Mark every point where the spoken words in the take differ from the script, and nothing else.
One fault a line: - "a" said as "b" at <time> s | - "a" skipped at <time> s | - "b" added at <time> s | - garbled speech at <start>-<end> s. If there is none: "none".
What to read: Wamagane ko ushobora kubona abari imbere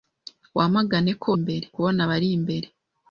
- "ushobora" said as "imbere" at 1.4 s